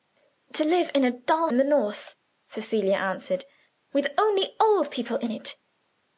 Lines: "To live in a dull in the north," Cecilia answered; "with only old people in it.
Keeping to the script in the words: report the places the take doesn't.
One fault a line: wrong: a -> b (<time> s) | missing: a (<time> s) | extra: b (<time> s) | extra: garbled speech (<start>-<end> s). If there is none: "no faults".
no faults